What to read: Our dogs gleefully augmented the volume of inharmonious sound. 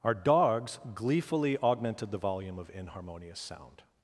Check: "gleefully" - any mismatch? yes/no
no